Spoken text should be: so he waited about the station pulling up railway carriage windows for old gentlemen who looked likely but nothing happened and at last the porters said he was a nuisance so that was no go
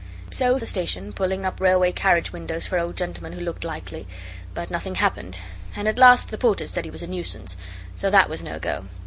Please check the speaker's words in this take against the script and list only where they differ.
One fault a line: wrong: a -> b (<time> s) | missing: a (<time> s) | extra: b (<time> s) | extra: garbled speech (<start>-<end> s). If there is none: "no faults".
missing: he waited about (0.6 s)